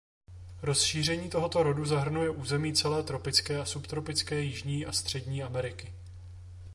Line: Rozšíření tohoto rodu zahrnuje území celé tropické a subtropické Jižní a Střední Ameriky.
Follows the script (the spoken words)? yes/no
yes